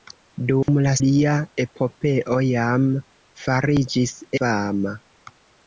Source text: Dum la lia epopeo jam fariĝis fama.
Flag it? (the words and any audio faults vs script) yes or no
yes